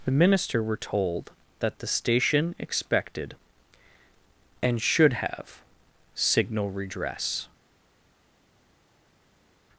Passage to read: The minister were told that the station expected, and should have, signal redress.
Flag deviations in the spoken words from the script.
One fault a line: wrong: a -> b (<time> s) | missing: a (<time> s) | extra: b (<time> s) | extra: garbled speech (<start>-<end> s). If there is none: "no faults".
no faults